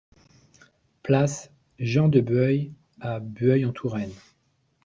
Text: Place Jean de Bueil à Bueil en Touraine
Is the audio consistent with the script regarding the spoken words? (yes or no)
yes